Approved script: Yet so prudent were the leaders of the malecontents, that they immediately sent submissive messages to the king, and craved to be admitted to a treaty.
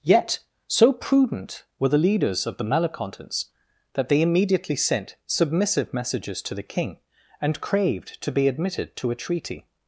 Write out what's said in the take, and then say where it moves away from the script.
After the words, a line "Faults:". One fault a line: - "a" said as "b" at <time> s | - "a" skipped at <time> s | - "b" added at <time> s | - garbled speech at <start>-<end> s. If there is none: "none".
Yet so prudent were the leaders of the malecontents, that they immediately sent submissive messages to the king, and craved to be admitted to a treaty.
Faults:
none